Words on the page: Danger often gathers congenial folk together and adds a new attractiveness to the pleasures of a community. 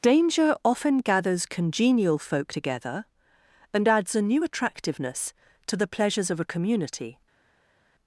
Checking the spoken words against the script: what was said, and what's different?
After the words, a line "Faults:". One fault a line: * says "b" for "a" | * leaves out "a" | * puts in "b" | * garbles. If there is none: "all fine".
Danger often gathers congenial folk together and adds a new attractiveness to the pleasures of a community.
Faults:
all fine